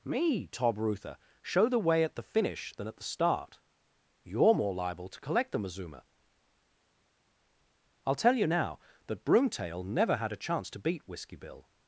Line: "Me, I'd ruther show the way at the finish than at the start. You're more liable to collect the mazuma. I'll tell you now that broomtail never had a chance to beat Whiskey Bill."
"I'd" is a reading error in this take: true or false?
true